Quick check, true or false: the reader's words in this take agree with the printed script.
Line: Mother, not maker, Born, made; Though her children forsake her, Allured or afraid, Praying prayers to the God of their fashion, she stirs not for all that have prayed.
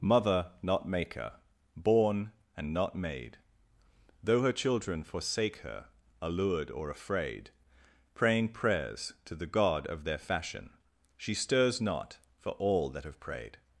false